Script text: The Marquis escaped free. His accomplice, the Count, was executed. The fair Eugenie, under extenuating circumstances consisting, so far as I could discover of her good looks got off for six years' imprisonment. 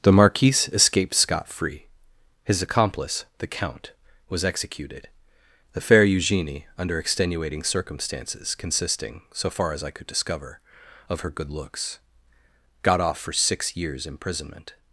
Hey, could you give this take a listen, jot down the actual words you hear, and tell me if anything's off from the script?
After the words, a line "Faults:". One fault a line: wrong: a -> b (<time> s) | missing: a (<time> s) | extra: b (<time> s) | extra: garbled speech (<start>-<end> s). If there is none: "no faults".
The Marquis escaped scot free. His accomplice, the Count, was executed. The fair Eugenie, under extenuating circumstances consisting, so far as I could discover of her good looks got off for six years' imprisonment.
Faults:
extra: scot (1.1 s)